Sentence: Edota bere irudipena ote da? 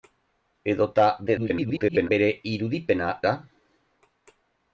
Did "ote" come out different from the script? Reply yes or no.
yes